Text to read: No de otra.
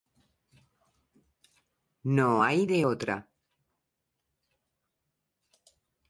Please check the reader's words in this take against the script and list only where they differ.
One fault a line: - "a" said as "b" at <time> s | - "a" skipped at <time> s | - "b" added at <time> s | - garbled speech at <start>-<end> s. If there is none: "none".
- "hay" added at 2.4 s